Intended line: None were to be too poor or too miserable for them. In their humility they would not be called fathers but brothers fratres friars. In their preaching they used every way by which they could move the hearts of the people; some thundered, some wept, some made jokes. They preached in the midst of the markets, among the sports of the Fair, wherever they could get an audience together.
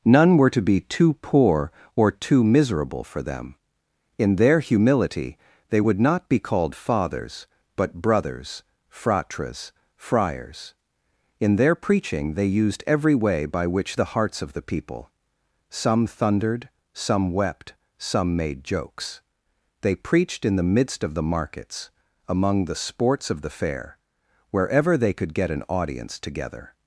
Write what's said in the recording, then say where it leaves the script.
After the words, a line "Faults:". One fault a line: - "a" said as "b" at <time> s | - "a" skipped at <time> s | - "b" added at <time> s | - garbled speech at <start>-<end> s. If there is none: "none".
None were to be too poor or too miserable for them. In their humility they would not be called fathers but brothers fratres friars. In their preaching they used every way by which the hearts of the people; some thundered, some wept, some made jokes. They preached in the midst of the markets, among the sports of the Fair, wherever they could get an audience together.
Faults:
- "they could move" skipped at 14.0 s